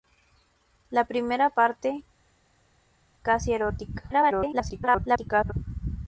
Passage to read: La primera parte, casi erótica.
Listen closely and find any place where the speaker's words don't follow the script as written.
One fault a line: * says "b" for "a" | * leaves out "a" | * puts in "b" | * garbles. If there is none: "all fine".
* garbles